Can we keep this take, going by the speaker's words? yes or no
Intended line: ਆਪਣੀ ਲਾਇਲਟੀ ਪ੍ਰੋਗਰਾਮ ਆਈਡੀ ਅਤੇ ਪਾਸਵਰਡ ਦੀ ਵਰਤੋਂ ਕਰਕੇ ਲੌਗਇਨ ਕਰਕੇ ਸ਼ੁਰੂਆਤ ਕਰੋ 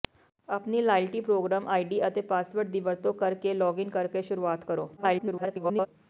no